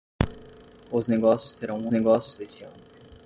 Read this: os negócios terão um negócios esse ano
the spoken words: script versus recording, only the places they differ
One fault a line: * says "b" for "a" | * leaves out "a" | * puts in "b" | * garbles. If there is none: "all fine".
all fine